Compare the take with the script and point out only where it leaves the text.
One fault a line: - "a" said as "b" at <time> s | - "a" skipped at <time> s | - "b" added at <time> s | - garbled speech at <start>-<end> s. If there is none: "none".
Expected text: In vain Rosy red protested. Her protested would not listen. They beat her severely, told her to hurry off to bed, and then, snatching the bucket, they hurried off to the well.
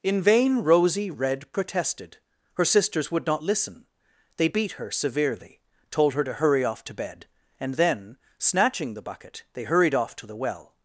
- "protested" said as "sisters" at 2.6 s